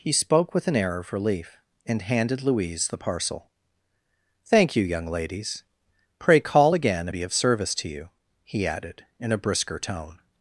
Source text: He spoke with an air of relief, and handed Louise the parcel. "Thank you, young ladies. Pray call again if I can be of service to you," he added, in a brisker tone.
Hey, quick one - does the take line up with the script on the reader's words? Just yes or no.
no